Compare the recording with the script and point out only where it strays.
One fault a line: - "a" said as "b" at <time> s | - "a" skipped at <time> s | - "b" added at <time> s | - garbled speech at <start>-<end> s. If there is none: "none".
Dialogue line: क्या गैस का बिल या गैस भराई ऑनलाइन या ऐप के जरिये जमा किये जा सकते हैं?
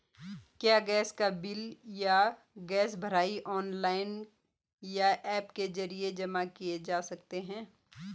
none